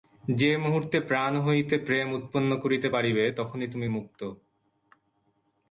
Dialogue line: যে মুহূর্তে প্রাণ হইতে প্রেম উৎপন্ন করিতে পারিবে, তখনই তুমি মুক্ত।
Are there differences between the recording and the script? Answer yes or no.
no